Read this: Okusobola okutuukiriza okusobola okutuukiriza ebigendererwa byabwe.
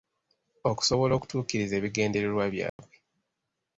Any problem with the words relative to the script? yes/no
yes